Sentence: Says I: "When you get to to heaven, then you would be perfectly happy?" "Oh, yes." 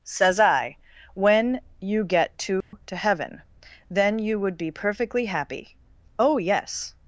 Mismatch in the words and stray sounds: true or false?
true